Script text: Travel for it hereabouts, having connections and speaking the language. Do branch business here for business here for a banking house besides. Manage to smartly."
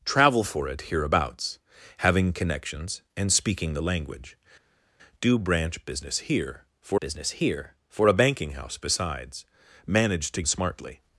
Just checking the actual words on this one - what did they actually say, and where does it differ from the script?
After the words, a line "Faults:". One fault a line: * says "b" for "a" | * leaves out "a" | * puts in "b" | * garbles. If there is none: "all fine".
Travel for it hereabouts, having connections and speaking the language. Do branch business here for business here for a banking house besides. Manage to smartly."
Faults:
all fine